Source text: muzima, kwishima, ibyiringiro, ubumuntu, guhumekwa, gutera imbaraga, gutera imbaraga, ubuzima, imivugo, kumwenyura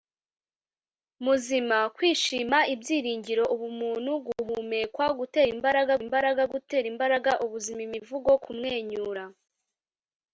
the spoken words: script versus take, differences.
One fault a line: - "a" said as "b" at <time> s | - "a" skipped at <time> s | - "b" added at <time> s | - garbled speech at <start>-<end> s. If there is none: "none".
- "imbaraga" added at 6.0 s